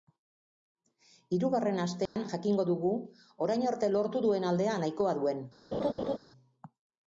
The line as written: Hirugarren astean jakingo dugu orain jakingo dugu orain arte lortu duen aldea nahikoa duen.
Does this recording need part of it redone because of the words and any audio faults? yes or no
yes